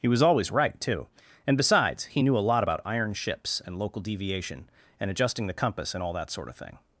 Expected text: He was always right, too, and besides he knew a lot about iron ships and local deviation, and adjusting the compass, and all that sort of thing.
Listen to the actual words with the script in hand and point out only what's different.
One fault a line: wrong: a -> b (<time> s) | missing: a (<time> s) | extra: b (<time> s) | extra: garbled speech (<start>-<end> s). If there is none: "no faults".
no faults